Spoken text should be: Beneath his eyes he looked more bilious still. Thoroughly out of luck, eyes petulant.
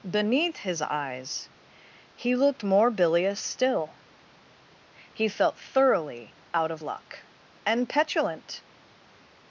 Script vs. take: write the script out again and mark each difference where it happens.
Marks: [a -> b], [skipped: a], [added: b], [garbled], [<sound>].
Beneath his eyes he looked more bilious still. [added: He felt] Thoroughly out of luck, [eyes -> and] petulant.